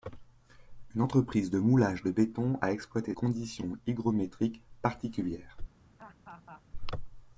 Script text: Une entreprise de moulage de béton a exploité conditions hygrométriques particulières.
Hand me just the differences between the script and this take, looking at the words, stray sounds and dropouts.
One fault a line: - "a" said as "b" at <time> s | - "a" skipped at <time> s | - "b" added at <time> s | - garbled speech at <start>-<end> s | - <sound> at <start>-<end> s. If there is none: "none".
- laugh at 6.0-6.6 s